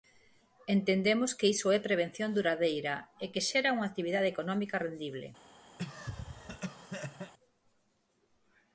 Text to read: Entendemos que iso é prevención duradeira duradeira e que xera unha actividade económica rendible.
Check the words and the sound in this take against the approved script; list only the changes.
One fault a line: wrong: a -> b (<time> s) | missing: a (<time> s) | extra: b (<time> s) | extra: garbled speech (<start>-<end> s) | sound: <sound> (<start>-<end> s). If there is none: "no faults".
missing: duradeira (3.0 s)
sound: cough (5.8-7.3 s)